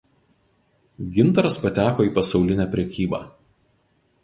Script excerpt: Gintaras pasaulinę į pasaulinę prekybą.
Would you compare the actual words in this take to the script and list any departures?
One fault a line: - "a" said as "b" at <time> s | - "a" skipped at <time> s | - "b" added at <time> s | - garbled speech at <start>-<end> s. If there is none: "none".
- "pasaulinę" said as "pateko" at 1.6 s